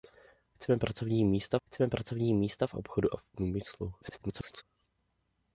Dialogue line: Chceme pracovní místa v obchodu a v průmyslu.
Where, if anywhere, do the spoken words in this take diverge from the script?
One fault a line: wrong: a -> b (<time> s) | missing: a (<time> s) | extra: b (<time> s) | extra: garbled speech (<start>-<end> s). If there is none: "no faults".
extra: chceme pracovní místa (1.6 s)
extra: garbled speech (4.0-4.6 s)